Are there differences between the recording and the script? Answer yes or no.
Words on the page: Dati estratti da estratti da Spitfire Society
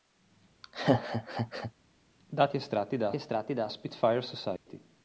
no